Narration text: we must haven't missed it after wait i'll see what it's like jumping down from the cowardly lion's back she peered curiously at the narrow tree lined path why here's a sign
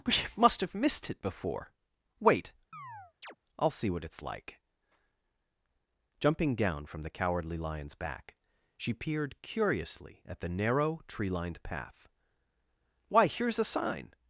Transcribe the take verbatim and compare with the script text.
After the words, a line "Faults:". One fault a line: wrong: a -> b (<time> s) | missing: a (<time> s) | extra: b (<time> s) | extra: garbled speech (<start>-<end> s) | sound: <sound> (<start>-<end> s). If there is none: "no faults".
we must have missed it before wait i'll see what it's like jumping down from the cowardly lion's back she peered curiously at the narrow tree lined path why here's a sign
Faults:
wrong: haven't -> have (0.6 s)
wrong: after -> before (1.2 s)
sound: chirp (2.7-3.4 s)